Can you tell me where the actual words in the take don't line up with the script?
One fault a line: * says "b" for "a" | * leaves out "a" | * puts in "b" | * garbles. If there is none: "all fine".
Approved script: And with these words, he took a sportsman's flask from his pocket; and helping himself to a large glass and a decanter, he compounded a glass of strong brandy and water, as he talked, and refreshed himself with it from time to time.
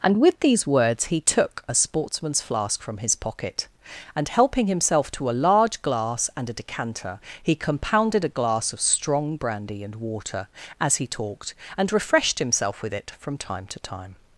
all fine